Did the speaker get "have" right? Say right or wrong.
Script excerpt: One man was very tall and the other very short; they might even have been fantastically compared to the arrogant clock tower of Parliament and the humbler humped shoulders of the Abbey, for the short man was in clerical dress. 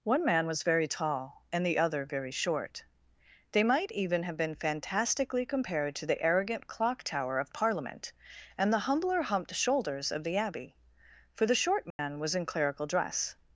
right